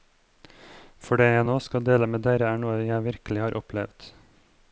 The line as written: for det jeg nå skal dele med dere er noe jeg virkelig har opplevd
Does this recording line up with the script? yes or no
yes